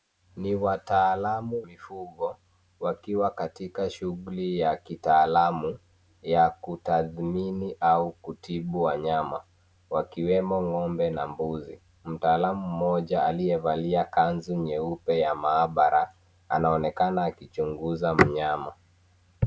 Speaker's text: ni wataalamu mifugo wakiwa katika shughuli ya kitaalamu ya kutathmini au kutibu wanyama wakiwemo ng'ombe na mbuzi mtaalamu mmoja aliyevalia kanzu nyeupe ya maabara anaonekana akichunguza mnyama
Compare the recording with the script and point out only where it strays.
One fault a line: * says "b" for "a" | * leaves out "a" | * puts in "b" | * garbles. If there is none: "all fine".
all fine